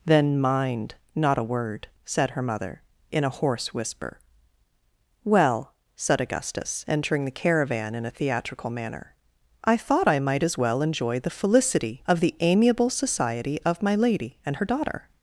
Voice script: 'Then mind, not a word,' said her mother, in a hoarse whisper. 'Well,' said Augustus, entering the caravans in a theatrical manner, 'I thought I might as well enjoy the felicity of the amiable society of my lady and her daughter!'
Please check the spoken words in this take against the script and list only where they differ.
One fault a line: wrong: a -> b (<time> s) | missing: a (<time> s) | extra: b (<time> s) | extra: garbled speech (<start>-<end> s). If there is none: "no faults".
wrong: caravans -> caravan (7.3 s)